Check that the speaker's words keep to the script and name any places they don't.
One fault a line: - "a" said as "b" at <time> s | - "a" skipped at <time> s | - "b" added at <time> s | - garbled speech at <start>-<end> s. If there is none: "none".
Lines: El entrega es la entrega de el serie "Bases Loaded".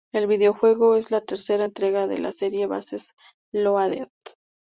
- "entrega" said as "videojuego" at 0.2 s
- "tercera" added at 1.2 s
- "el" said as "la" at 2.2 s